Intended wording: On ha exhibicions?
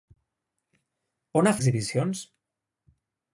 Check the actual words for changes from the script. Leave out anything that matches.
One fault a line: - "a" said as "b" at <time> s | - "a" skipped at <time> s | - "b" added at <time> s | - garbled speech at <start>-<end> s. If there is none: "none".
none